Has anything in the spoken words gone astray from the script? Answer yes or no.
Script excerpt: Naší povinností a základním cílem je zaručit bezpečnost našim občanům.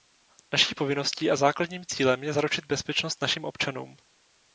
no